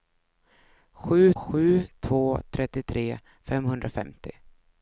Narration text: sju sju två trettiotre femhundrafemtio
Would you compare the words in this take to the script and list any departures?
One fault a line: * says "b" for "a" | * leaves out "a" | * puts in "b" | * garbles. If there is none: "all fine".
all fine